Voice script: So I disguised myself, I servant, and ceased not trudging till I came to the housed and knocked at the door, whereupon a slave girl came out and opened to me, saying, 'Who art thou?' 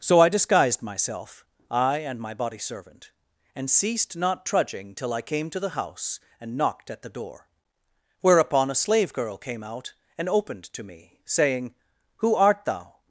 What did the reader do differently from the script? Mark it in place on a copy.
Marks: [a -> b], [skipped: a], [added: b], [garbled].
So I disguised myself, I [added: and my body] servant, and ceased not trudging till I came to the [housed -> house] and knocked at the door, whereupon a slave girl came out and opened to me, saying, 'Who art thou?'